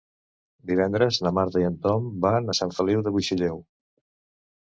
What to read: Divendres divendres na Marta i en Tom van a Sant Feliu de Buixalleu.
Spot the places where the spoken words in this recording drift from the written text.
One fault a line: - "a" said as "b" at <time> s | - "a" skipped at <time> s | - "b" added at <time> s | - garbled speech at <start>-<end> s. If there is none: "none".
- "divendres" skipped at 1.2 s